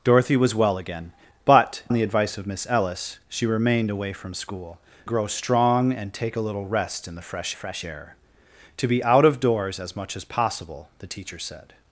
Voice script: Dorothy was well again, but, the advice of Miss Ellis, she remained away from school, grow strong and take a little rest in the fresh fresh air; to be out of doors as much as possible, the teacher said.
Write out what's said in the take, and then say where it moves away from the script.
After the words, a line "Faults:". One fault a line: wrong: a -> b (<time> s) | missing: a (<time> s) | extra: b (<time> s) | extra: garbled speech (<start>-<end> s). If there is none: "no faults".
Dorothy was well again, but, the advice of Miss Ellis, she remained away from school, grow strong and take a little rest in the fresh fresh air; to be out of doors as much as possible, the teacher said.
Faults:
no faults